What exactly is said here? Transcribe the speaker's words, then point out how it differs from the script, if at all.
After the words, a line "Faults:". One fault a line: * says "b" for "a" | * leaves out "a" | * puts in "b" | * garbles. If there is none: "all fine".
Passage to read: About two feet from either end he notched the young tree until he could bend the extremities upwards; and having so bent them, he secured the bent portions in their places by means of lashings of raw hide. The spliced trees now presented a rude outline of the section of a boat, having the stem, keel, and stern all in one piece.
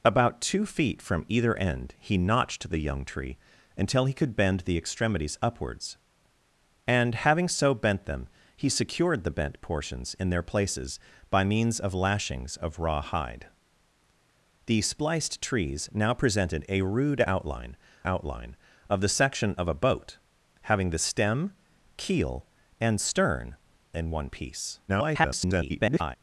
About two feet from either end he notched the young tree until he could bend the extremities upwards; and having so bent them, he secured the bent portions in their places by means of lashings of raw hide. The spliced trees now presented a rude outline outline of the section of a boat, having the stem, keel, and stern in one piece. [garbled]
Faults:
* puts in "outline"
* leaves out "all"
* garbles